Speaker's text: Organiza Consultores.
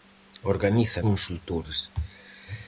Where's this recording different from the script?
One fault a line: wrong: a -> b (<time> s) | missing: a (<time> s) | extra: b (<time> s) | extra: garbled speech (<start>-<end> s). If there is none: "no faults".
no faults